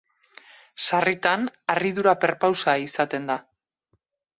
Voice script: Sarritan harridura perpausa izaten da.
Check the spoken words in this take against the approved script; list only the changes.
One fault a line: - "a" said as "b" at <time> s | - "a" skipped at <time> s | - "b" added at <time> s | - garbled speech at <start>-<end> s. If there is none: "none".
none